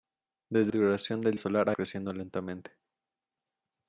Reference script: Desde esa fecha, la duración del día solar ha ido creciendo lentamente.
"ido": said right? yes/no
no